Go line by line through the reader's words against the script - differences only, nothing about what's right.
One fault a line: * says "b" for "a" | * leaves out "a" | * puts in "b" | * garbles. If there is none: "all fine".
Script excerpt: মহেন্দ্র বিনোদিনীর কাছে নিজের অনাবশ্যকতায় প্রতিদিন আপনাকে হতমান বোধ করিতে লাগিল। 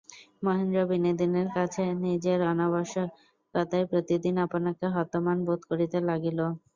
all fine